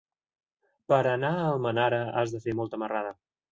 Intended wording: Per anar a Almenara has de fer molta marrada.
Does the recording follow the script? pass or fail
pass